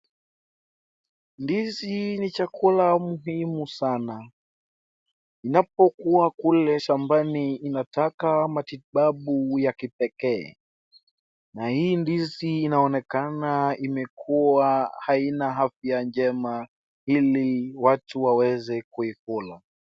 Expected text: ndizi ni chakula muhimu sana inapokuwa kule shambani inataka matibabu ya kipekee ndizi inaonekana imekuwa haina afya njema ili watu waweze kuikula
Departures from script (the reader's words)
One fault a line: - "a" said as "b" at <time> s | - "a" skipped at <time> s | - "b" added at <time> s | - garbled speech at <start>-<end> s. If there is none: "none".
- "na hii" added at 11.5 s